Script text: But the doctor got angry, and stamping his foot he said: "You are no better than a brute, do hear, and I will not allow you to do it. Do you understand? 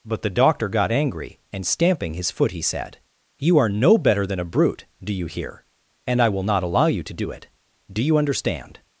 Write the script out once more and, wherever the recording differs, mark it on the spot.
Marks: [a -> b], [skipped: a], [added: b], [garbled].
But the doctor got angry, and stamping his foot he said: "You are no better than a brute, do [added: you] hear, and I will not allow you to do it. Do you understand?